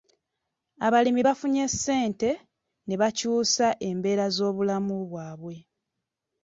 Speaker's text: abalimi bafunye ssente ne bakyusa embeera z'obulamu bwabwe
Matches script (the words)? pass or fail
pass